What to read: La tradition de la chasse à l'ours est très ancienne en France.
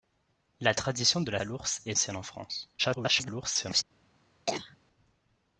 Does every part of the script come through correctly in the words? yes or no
no